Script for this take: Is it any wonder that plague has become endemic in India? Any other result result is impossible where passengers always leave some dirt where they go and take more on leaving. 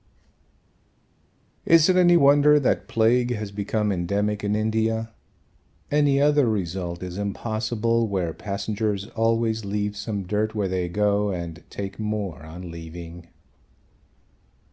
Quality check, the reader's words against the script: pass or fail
fail